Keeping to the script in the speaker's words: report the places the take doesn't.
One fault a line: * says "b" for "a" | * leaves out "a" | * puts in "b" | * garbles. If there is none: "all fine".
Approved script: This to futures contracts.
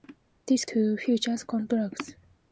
all fine